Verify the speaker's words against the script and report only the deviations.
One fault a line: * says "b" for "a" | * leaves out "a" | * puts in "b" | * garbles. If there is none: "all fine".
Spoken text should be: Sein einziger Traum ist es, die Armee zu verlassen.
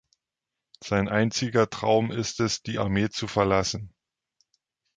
all fine